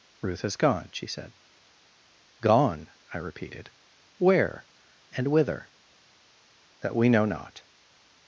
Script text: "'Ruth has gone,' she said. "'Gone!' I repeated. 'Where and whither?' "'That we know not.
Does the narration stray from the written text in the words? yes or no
no